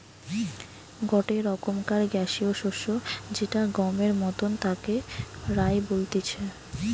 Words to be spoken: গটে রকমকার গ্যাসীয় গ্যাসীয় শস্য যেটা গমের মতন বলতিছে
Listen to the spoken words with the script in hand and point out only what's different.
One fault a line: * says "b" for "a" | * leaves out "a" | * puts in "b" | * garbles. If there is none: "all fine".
* leaves out "গ্যাসীয়"
* puts in "তাকে রায়"